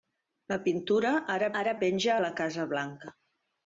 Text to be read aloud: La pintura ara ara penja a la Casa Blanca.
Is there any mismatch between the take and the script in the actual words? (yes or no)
no